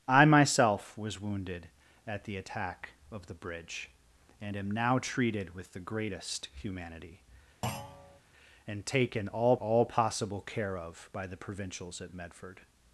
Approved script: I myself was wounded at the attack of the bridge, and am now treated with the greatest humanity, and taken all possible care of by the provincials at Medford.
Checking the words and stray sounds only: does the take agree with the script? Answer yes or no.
no